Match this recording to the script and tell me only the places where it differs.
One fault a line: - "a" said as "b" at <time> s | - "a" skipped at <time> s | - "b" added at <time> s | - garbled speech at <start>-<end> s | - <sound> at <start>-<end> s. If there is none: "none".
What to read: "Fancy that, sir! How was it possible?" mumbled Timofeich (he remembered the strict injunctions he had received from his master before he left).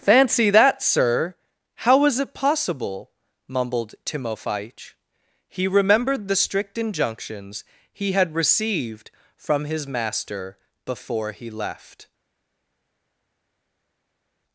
none